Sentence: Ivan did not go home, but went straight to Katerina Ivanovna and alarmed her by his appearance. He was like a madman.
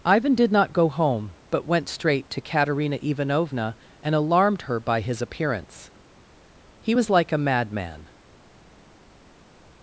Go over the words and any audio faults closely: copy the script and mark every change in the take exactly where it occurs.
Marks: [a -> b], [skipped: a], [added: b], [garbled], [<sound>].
Ivan did not go home, but went straight to Katerina Ivanovna and alarmed her by his appearance. He was like a madman.